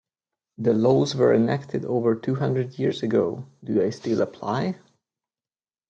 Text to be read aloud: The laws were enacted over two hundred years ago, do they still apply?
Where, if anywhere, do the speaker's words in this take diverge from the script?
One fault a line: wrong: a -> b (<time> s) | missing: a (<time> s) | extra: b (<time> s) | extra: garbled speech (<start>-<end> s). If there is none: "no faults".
no faults